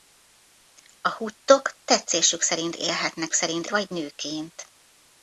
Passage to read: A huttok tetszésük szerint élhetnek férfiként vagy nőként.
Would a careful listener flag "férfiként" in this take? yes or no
yes